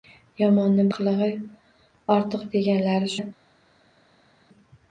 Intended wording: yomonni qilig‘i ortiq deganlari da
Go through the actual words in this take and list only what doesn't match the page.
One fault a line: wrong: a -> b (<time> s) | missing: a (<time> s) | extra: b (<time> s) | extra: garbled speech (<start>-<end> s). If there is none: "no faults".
no faults